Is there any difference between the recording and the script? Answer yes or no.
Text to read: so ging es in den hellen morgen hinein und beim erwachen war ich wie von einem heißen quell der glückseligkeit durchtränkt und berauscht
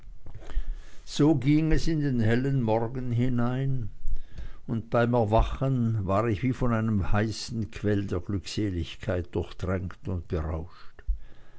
no